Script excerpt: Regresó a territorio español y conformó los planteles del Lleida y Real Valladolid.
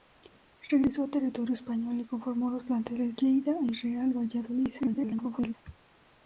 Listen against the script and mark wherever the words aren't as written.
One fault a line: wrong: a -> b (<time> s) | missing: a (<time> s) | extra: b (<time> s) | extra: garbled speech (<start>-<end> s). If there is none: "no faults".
missing: del (3.2 s)
extra: garbled speech (4.8-5.5 s)